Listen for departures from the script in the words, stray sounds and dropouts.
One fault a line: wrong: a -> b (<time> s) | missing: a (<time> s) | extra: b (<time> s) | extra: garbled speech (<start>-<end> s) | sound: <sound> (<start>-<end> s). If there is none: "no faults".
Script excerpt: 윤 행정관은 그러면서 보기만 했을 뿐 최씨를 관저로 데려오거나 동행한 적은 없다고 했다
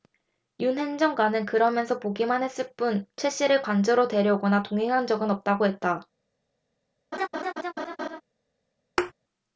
sound: laugh (7.1-8.2 s)
sound: thud (9.0-9.1 s)